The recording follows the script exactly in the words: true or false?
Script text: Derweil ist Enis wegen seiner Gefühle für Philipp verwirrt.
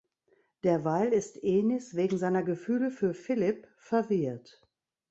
true